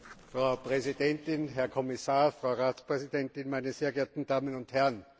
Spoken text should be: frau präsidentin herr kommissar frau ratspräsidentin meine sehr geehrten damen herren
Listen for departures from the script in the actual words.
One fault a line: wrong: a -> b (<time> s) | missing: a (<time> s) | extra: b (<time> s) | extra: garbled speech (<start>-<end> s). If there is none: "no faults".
extra: und (4.5 s)